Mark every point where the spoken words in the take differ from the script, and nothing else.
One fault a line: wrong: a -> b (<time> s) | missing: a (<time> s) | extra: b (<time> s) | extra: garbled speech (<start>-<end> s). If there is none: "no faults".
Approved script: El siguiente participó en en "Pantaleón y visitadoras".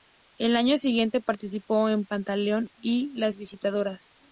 extra: año (0.6 s)
missing: en (2.1 s)
extra: las (3.2 s)